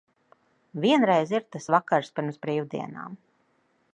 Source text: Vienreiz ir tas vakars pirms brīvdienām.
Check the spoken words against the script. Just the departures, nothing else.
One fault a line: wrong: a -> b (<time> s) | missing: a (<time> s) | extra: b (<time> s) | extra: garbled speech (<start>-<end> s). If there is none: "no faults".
no faults